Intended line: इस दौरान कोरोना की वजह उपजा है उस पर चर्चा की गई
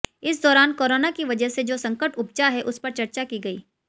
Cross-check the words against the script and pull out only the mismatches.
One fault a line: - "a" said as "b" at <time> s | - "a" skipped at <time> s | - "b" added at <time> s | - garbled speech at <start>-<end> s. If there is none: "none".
- "से जो संकट" added at 1.5 s